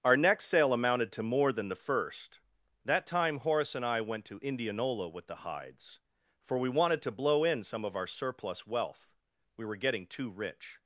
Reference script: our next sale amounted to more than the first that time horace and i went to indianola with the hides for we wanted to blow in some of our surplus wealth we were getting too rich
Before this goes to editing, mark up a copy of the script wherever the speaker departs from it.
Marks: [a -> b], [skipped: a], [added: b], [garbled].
our next sale amounted to more than the first that time horace and i went to indianola with the hides for we wanted to blow in some of our surplus wealth we were getting too rich